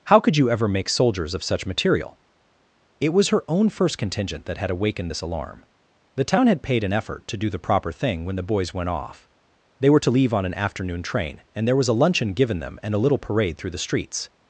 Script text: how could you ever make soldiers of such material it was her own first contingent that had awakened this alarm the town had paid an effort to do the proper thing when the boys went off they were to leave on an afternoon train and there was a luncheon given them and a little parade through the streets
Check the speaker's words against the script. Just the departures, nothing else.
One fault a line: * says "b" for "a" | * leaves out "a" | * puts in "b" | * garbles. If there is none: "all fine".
all fine